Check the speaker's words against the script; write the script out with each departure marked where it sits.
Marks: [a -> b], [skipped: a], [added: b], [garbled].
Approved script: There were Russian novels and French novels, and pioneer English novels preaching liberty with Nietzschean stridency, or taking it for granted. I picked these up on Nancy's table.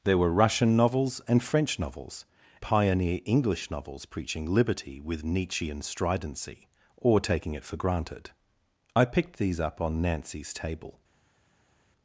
There were Russian novels and French novels, [skipped: and] pioneer English novels preaching liberty with Nietzschean stridency, or taking it for granted. I picked these up on Nancy's table.